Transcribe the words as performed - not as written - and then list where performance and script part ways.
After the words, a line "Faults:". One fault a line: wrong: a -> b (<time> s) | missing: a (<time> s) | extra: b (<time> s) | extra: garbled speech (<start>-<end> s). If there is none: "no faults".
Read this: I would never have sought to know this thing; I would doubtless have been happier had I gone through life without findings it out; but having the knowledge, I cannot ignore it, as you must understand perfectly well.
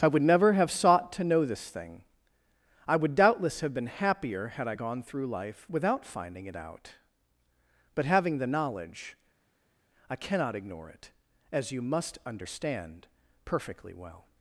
I would never have sought to know this thing; I would doubtless have been happier had I gone through life without finding it out; but having the knowledge, I cannot ignore it, as you must understand perfectly well.
Faults:
wrong: findings -> finding (6.1 s)